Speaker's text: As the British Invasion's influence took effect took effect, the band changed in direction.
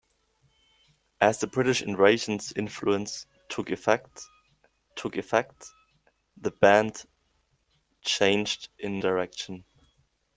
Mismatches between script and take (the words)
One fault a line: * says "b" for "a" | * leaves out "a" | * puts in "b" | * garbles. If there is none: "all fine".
all fine